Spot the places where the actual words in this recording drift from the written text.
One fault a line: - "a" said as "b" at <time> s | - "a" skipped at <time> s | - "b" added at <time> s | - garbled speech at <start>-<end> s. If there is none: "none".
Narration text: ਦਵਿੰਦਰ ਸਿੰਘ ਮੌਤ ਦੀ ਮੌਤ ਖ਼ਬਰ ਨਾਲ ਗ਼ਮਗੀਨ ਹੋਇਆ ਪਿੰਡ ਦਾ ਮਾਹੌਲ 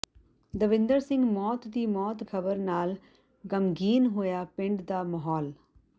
none